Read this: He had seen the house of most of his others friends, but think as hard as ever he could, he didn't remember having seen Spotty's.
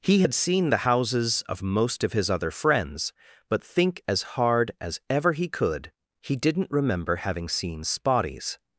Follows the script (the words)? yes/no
no